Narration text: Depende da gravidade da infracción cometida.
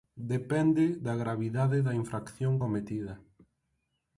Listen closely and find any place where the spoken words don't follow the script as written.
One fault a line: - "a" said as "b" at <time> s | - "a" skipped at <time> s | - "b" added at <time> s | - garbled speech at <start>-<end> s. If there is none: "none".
none